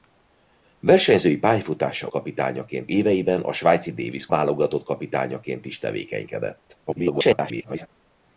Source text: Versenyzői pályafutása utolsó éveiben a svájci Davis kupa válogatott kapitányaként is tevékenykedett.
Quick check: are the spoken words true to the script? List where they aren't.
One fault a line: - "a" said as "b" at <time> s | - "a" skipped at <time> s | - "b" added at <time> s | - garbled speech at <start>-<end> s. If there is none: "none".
- "utolsó" said as "kapitányaként" at 2.1 s
- "kupa" skipped at 4.3 s
- garbled speech at 6.9-7.9 s